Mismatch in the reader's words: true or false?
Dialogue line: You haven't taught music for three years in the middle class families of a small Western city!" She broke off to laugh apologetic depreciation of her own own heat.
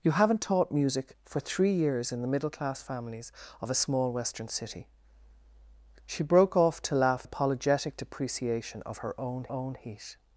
false